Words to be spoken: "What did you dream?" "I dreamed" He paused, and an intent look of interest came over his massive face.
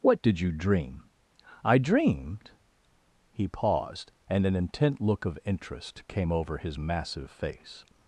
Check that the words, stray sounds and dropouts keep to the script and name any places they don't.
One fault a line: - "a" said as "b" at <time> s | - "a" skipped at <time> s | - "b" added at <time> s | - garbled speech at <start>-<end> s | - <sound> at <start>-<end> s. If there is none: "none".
none